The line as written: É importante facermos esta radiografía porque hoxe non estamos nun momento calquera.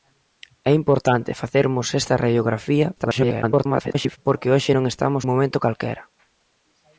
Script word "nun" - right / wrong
wrong